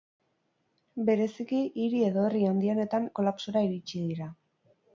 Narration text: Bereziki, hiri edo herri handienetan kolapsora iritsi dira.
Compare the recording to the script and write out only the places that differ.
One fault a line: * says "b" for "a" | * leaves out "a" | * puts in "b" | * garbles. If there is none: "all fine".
all fine